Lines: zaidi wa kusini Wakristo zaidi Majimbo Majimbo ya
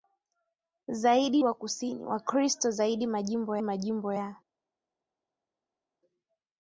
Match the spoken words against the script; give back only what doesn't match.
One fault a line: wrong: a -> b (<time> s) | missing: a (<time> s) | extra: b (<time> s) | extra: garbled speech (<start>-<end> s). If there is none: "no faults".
no faults